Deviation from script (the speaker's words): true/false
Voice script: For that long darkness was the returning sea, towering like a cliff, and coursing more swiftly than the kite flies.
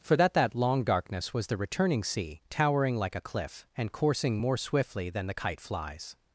true